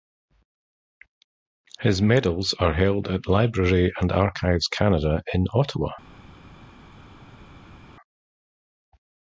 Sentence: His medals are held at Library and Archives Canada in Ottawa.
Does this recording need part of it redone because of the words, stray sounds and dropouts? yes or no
no